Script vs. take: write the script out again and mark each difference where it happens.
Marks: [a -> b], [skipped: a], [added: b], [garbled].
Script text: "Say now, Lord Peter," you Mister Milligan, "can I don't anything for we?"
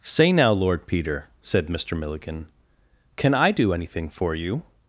"Say now, Lord Peter," [you -> said] Mister Milligan, "can I [don't -> do] anything for [we?" -> you]